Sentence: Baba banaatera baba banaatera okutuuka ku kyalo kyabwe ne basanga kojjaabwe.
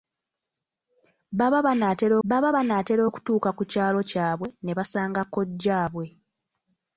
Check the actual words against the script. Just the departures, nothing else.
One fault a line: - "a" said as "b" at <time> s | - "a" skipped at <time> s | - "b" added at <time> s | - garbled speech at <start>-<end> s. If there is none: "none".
none